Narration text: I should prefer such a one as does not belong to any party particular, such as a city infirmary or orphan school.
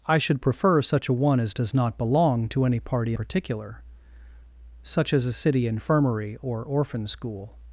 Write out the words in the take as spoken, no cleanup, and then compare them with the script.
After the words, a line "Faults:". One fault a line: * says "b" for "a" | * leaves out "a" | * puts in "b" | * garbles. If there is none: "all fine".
I should prefer such a one as does not belong to any party particular, such as a city infirmary or orphan school.
Faults:
all fine